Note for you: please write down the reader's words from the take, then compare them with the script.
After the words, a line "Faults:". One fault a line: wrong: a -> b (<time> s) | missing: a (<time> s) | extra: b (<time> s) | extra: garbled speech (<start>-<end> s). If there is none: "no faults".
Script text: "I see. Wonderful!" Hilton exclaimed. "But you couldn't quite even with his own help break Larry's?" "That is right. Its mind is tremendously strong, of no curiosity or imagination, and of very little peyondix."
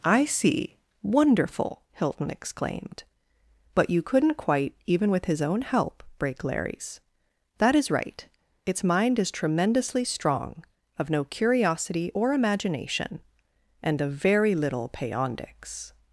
"I see. Wonderful!" Hilton exclaimed. "But you couldn't quite even with his own help break Larry's?" "That is right. Its mind is tremendously strong, of no curiosity or imagination, and of very little peyondix."
Faults:
no faults